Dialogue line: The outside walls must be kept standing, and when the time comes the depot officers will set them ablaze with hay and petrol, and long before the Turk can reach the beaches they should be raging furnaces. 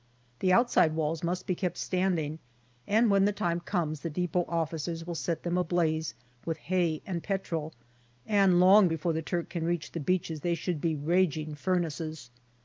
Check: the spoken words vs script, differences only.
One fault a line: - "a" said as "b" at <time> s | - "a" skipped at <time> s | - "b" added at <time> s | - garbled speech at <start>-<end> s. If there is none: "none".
none